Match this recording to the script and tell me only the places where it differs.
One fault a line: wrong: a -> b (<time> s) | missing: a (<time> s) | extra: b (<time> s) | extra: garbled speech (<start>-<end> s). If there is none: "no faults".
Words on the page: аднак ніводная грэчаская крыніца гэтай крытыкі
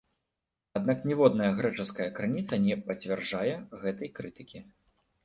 extra: не пацвярджае (2.6 s)